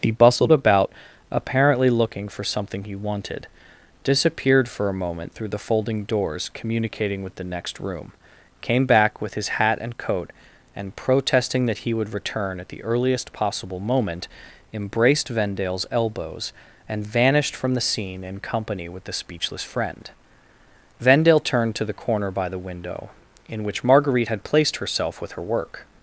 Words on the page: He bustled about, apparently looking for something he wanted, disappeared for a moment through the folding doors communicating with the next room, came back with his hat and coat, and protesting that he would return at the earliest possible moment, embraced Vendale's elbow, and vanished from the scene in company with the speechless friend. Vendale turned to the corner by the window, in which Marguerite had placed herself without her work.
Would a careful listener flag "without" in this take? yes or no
yes